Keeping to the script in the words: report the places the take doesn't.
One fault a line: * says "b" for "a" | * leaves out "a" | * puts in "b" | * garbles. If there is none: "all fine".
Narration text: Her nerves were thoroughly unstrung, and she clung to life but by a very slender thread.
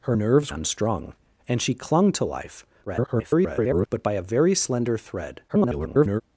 * leaves out "were thoroughly"
* garbles
* garbles